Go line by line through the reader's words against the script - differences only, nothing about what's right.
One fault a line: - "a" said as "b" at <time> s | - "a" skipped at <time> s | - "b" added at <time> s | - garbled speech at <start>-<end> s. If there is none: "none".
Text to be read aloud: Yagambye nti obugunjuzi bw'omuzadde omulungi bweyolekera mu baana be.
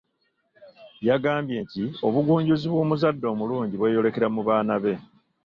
none